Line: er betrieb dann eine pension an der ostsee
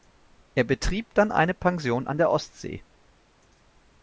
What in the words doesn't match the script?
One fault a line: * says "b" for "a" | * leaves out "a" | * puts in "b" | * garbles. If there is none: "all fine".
all fine